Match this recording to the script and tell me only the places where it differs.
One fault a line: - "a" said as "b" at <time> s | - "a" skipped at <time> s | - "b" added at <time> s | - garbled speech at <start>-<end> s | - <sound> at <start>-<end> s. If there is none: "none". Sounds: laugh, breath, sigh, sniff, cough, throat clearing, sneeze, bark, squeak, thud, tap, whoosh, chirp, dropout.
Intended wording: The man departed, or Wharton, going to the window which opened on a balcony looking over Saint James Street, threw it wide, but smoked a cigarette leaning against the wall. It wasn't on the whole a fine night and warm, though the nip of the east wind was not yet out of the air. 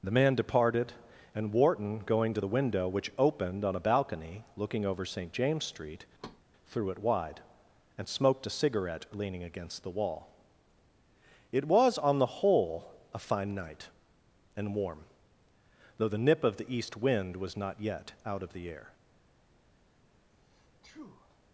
- "or" said as "and" at 1.4 s
- thud at 6.2-6.4 s
- "but" said as "and" at 8.0 s
- "wasn't" said as "was" at 11.7 s
- sneeze at 20.3-21.4 s